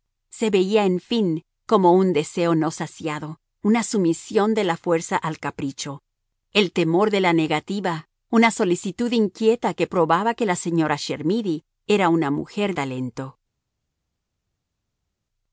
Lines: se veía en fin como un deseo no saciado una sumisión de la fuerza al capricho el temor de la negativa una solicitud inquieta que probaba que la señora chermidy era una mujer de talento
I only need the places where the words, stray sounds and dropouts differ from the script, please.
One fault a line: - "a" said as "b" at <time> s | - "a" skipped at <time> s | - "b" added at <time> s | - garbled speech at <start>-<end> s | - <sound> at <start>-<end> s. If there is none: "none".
- "de" skipped at 12.7 s